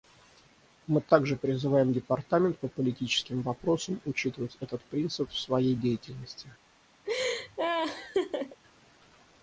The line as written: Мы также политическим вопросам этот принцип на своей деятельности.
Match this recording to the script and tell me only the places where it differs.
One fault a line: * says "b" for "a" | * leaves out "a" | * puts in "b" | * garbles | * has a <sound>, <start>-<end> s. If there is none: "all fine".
* puts in "призываем Департамент по"
* puts in "учитывать"
* says "в" for "на"
* has a laugh, 7.1-8.6 s